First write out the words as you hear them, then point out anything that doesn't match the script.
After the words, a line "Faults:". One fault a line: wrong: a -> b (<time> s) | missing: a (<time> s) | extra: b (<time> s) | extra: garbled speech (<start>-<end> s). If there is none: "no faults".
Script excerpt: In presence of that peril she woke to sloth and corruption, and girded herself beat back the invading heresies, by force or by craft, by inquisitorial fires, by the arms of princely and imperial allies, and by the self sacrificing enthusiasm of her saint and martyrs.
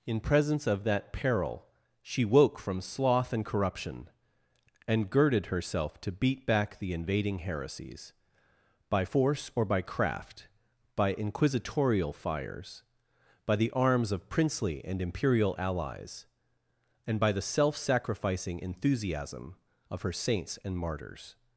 In presence of that peril she woke from sloth and corruption, and girded herself to beat back the invading heresies, by force or by craft, by inquisitorial fires, by the arms of princely and imperial allies, and by the self sacrificing enthusiasm of her saints and martyrs.
Faults:
wrong: to -> from (2.6 s)
extra: to (6.0 s)
wrong: saint -> saints (20.1 s)